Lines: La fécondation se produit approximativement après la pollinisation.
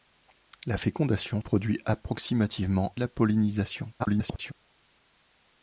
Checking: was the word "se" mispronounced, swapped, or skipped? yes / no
yes